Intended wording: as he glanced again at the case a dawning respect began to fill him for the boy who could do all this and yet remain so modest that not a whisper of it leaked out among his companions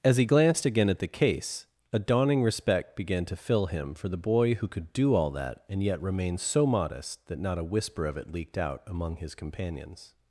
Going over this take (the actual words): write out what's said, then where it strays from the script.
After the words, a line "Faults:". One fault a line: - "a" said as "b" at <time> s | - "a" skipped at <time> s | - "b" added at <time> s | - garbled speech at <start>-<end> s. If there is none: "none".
as he glanced again at the case a dawning respect began to fill him for the boy who could do all that and yet remain so modest that not a whisper of it leaked out among his companions
Faults:
- "this" said as "that" at 5.3 s